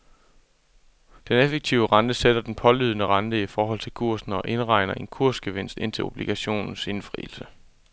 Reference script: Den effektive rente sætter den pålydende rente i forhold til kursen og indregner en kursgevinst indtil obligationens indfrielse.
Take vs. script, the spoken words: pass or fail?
pass